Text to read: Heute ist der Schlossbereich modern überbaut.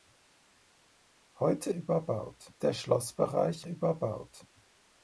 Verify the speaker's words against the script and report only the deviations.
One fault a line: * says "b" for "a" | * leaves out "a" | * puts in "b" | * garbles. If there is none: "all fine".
* says "überbaut" for "ist"
* leaves out "modern"